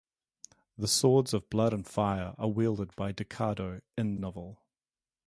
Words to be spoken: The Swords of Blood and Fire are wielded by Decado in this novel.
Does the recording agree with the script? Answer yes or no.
no